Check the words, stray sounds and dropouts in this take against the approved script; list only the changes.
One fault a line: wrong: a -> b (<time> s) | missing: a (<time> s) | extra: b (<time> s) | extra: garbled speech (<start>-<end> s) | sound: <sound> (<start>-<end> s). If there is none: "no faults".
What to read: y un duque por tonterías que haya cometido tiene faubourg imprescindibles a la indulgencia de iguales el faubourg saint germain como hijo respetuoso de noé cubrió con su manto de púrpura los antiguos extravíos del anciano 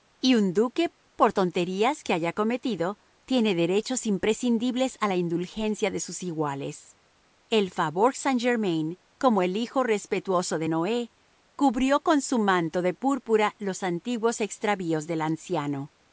wrong: faubourg -> derechos (3.5 s)
extra: sus (6.0 s)
extra: el (9.4 s)